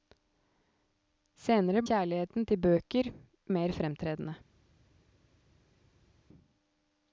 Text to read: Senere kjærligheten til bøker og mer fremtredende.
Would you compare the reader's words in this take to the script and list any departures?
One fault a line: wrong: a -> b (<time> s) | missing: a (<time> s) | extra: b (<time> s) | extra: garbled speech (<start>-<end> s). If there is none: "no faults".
no faults